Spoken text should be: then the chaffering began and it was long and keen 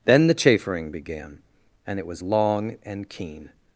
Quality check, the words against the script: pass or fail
pass